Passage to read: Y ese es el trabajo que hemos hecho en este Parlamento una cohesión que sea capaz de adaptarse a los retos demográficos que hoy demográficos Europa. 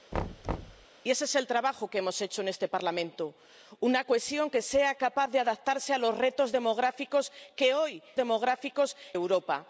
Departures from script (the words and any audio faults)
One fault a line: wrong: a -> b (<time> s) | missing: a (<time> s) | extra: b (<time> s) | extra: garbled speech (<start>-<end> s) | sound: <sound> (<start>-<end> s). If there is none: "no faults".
sound: thud (0.1-0.9 s)